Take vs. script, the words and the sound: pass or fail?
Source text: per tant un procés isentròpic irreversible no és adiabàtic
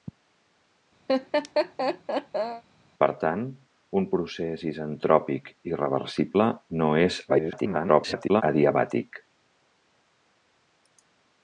fail